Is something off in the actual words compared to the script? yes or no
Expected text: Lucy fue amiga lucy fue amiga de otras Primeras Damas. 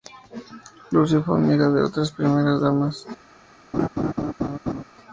yes